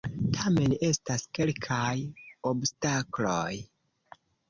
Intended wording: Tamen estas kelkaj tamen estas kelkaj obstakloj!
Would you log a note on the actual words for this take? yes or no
yes